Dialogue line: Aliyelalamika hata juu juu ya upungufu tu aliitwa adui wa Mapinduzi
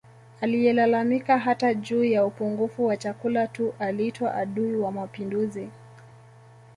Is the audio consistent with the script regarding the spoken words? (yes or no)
no